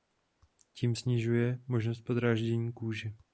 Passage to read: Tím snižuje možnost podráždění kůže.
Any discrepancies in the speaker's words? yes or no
no